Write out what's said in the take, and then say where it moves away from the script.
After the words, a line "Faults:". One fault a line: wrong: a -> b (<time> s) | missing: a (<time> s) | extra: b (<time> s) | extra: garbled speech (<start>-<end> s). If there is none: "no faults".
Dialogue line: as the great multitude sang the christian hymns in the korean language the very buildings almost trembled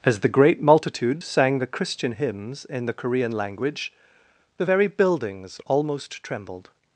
as the great multitude sang the christian hymns in the korean language the very buildings almost trembled
Faults:
no faults